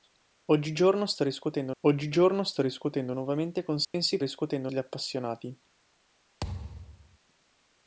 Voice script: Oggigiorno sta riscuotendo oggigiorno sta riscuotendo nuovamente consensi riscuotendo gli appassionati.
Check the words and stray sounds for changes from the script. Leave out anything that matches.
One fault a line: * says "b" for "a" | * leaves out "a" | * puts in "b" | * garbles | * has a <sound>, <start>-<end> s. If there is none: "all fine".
* has a dropout, 3.8-3.9 s
* has a thud, 6.4-7.2 s